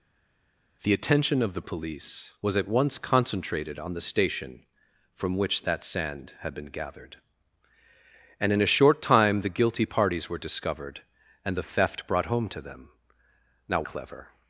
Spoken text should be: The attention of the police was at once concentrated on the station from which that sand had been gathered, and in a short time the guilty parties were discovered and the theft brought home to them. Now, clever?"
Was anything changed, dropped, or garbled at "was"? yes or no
no